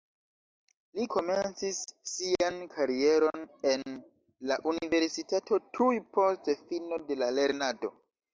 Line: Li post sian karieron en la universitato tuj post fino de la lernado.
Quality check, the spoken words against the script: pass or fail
fail